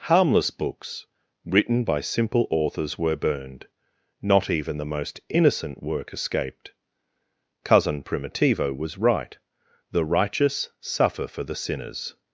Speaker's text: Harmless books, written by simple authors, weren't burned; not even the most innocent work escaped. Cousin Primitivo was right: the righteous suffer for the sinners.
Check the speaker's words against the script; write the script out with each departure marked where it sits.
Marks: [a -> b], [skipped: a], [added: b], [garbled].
Harmless books, written by simple authors, [weren't -> were] burned; not even the most innocent work escaped. Cousin Primitivo was right: the righteous suffer for the sinners.